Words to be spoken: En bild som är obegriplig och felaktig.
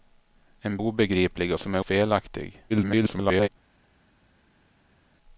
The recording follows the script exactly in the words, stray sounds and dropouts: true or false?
false